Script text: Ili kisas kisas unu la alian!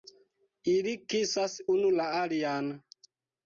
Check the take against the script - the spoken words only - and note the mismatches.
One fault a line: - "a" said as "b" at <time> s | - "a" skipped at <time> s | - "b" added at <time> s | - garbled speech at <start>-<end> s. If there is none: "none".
- "kisas" skipped at 1.6 s